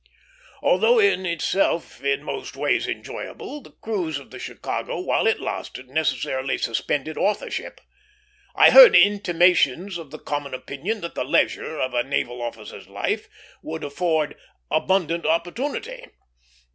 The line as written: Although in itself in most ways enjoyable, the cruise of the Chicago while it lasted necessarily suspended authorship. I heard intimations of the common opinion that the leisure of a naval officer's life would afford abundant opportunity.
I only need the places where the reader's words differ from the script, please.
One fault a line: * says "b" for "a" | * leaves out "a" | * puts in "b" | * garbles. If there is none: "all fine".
all fine